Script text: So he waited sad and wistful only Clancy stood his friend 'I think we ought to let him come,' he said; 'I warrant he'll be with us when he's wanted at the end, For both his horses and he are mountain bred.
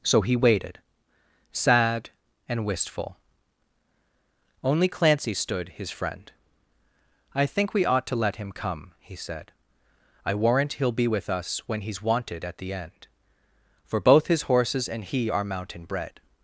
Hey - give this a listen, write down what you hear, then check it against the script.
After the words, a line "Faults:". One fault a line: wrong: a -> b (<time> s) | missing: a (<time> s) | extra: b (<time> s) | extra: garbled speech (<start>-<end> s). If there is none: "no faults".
So he waited sad and wistful only Clancy stood his friend 'I think we ought to let him come,' he said; 'I warrant he'll be with us when he's wanted at the end, For both his horses and he are mountain bred.
Faults:
no faults